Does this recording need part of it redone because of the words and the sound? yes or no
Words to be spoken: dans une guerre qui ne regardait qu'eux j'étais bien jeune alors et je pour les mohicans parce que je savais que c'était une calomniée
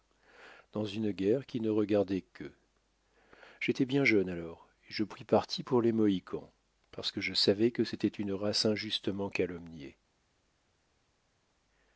yes